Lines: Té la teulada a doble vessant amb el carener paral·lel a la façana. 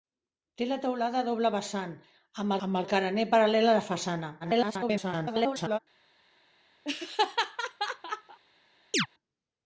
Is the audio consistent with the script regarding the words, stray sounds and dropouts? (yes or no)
no